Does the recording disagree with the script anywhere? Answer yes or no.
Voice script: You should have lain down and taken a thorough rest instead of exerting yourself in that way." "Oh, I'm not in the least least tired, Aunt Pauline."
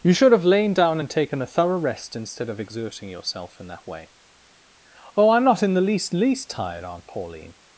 no